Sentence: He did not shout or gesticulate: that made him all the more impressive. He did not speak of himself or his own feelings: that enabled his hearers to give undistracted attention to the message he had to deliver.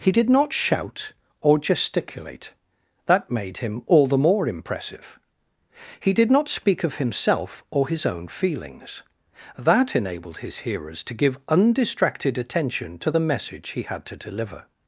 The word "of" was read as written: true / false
true